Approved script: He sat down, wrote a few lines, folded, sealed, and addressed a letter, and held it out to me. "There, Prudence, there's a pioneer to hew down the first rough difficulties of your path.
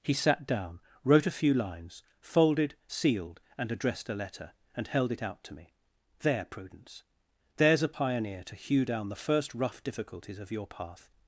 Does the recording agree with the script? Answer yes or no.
yes